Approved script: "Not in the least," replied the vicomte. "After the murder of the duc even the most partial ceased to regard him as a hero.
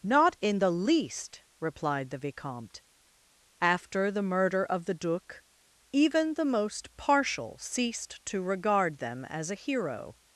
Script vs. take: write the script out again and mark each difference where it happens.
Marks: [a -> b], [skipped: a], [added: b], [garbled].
"Not in the least," replied the vicomte. "After the murder of the duc even the most partial ceased to regard [him -> them] as a hero.